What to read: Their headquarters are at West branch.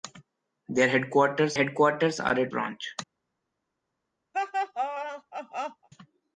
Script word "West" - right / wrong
wrong